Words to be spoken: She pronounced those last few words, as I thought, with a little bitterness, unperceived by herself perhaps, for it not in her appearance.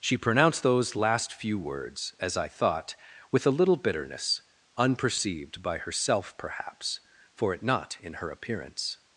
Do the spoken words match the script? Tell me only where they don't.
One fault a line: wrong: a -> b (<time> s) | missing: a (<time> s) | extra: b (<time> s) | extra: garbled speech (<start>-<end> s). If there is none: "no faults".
no faults